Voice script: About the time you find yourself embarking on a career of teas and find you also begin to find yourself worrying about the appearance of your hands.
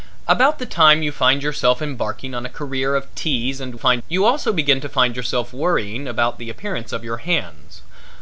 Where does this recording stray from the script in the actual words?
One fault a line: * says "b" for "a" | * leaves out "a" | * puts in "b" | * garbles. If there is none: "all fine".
all fine